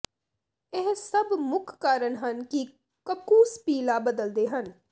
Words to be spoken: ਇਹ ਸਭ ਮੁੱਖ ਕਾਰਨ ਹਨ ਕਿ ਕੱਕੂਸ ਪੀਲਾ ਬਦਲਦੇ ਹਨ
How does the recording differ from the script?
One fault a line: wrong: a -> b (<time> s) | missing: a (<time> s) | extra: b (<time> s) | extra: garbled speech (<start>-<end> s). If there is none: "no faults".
no faults